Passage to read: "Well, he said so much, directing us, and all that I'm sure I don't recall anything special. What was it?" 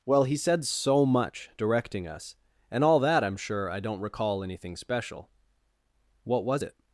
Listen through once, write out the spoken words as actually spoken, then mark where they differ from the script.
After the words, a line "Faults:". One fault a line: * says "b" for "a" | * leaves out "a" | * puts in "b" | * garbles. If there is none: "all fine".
"Well, he said so much, directing us, and all that I'm sure I don't recall anything special. What was it?"
Faults:
all fine